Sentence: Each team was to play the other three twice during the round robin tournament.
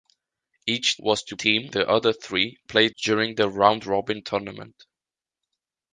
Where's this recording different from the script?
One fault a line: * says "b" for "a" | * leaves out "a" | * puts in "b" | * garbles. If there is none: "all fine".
* leaves out "team"
* says "team" for "play"
* says "play" for "twice"